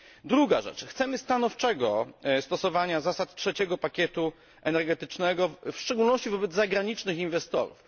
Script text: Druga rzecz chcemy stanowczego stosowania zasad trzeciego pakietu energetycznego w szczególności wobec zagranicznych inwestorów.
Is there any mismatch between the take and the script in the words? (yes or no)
no